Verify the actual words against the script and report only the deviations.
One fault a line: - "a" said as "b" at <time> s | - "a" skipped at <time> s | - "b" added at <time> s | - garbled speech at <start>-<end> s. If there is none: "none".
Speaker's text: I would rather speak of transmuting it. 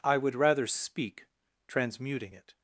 - "of" skipped at 1.3 s